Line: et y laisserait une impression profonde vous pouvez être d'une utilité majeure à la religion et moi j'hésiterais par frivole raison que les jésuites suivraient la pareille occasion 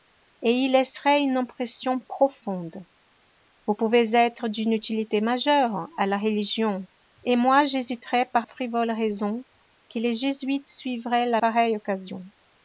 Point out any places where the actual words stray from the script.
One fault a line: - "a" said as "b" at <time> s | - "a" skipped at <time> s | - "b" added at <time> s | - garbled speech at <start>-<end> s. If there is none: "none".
none